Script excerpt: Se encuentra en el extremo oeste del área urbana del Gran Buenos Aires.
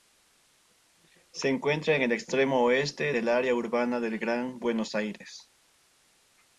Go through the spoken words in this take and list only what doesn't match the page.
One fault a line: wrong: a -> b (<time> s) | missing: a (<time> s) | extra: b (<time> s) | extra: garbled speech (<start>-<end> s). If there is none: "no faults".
no faults